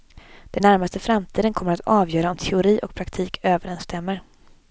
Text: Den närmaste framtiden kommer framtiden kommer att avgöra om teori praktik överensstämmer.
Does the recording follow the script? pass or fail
fail